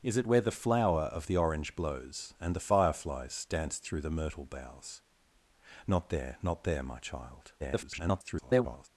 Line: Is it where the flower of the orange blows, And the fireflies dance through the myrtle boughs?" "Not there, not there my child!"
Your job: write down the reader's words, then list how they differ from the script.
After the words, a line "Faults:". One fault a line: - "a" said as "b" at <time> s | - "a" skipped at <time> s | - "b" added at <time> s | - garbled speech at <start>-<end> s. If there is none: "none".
Is it where the flower of the orange blows, And the fireflies dance through the myrtle boughs?" "Not there, not there my child!" [garbled]
Faults:
- garbled speech at 7.6-8.9 s